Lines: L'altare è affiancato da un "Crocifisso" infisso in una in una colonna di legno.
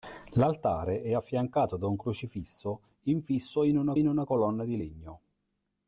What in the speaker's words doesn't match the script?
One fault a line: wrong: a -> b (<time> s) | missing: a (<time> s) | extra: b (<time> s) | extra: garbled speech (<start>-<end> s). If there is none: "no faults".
no faults